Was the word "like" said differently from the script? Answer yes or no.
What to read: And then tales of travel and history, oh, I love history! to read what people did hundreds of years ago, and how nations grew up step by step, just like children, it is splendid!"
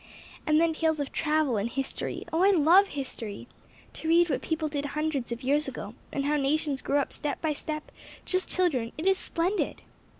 yes